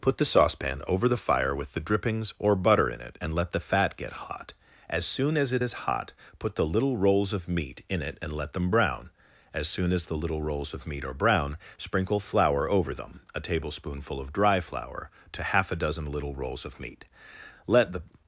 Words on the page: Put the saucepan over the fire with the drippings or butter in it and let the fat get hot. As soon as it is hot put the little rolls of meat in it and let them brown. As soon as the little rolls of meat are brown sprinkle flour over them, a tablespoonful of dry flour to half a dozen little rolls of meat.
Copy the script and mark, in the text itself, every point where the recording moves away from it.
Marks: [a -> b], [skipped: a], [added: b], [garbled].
Put the saucepan over the fire with the drippings or butter in it and let the fat get hot. As soon as it is hot put the little rolls of meat in it and let them brown. As soon as the little rolls of meat are brown sprinkle flour over them, a tablespoonful of dry flour to half a dozen little rolls of meat. [added: Let the]